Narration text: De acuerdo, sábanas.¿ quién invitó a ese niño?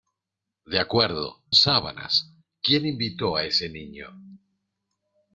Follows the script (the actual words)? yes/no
yes